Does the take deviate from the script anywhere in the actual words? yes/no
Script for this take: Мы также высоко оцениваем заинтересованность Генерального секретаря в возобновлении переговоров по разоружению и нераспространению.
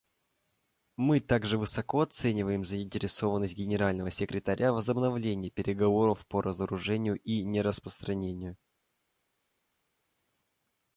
no